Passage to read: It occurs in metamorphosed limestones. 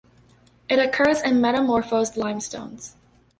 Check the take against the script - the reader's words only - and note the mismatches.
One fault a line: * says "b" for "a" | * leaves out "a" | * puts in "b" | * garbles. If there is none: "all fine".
all fine